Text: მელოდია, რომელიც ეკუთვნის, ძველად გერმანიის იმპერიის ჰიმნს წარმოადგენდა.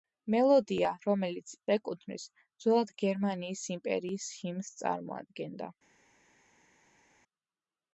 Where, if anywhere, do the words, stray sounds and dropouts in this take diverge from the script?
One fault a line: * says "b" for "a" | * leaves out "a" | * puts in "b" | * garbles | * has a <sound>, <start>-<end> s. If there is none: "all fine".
all fine